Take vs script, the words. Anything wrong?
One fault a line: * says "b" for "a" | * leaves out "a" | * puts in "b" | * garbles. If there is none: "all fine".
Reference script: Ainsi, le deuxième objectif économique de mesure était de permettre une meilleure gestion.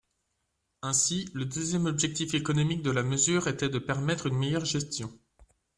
* puts in "la"